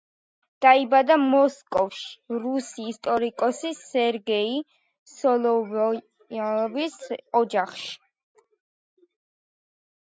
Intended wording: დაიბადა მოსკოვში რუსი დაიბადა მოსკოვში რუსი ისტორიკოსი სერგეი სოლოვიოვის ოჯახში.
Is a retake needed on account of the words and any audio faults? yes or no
yes